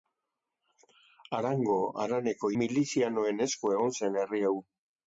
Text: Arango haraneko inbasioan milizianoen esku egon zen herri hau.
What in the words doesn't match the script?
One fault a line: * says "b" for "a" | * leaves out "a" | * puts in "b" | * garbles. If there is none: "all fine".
* leaves out "inbasioan"